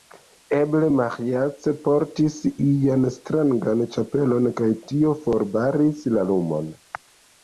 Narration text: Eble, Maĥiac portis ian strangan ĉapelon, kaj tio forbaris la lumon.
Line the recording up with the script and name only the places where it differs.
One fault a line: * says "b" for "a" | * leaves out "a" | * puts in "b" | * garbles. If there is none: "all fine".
all fine